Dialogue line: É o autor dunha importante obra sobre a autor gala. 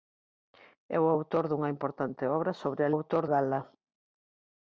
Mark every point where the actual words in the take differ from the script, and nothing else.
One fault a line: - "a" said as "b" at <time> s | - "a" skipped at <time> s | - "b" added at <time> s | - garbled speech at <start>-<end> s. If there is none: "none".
none